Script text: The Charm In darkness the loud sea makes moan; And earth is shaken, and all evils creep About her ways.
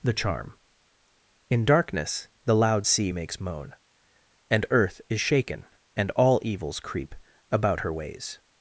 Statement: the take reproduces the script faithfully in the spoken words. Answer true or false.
true